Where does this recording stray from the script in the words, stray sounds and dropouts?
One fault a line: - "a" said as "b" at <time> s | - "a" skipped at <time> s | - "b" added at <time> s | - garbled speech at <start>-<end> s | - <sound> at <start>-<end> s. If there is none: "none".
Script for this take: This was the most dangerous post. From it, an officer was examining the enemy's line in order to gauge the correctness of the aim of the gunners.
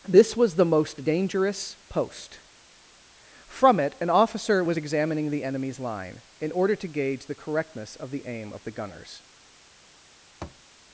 - thud at 10.4-10.6 s